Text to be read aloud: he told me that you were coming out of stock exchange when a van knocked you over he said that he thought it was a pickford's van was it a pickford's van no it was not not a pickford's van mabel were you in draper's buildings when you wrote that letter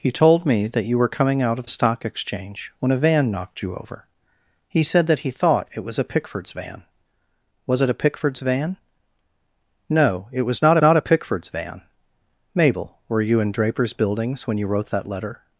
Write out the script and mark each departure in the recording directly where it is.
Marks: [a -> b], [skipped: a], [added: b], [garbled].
he told me that you were coming out of stock exchange when a van knocked you over he said that he thought it was a pickford's van was it a pickford's van no it was not not a pickford's van mabel were you in draper's buildings when you wrote that letter